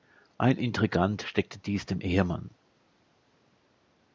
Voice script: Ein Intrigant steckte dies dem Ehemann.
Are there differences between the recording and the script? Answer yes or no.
no